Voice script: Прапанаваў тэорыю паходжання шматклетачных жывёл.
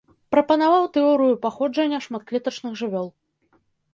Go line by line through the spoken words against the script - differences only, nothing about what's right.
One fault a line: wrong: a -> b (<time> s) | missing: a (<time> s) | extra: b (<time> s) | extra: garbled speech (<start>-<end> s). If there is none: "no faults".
no faults